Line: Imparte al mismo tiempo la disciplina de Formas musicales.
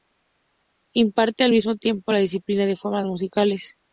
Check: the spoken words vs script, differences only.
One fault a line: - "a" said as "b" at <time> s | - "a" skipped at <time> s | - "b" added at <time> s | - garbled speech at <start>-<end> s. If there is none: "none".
none